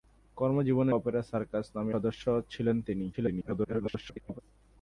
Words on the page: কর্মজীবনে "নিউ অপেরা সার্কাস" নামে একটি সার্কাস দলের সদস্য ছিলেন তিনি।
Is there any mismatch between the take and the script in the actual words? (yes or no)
yes